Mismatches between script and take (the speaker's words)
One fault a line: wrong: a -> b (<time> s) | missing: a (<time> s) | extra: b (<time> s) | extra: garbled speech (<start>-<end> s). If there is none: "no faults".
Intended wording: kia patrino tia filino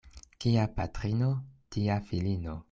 no faults